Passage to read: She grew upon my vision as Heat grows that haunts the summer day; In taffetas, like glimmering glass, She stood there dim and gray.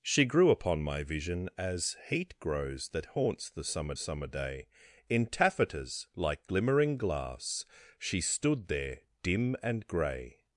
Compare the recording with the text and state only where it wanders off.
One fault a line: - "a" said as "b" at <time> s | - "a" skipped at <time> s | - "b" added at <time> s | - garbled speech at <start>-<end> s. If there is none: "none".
- "summer" added at 3.9 s